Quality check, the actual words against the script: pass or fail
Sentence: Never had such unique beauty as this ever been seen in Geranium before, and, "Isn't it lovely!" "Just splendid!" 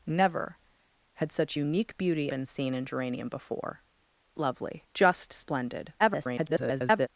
fail